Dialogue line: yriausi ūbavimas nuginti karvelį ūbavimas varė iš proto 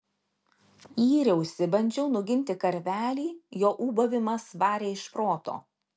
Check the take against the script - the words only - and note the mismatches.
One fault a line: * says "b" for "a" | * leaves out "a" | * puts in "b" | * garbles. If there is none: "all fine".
* says "bandžiau" for "ūbavimas"
* puts in "jo"